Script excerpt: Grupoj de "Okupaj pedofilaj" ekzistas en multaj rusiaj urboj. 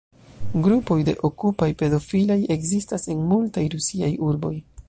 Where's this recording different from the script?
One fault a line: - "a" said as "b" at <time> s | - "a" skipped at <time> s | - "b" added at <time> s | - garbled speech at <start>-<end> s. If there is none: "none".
none